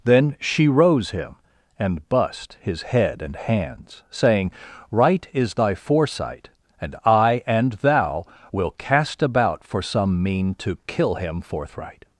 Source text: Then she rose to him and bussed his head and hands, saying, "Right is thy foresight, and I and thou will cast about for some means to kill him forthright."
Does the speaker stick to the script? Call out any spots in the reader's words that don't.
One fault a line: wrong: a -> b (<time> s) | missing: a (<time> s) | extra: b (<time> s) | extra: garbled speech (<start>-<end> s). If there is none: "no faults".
missing: to (1.1 s)
wrong: means -> mean (10.2 s)